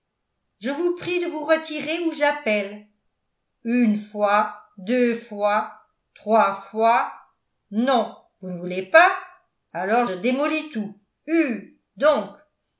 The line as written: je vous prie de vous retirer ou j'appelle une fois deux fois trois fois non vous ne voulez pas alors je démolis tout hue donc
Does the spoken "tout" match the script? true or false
true